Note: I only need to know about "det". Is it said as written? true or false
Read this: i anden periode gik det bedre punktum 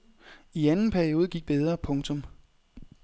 false